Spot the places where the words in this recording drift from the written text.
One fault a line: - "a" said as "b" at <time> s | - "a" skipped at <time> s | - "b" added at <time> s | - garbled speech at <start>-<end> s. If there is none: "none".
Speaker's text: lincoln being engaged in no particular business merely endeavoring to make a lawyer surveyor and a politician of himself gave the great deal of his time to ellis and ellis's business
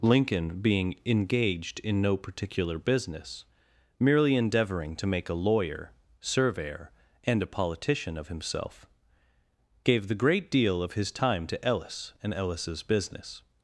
none